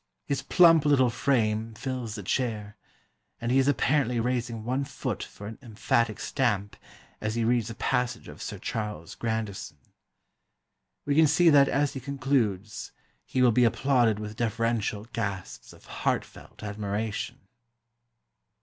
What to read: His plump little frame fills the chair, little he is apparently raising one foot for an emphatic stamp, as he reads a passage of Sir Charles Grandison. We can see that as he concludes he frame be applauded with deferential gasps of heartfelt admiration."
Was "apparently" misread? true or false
false